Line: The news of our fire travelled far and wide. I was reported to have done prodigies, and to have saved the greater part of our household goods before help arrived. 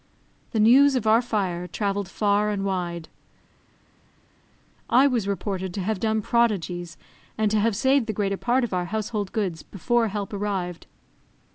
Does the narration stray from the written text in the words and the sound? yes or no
no